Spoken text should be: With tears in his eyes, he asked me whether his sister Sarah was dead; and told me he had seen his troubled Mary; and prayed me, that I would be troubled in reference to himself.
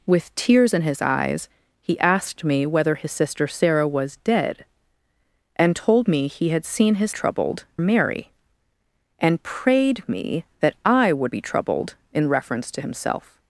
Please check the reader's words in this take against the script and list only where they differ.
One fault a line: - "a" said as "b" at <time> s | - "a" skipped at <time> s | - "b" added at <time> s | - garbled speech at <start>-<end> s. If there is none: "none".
none